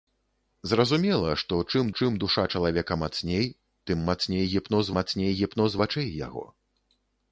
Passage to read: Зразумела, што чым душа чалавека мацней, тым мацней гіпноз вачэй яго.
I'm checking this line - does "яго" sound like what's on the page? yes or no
yes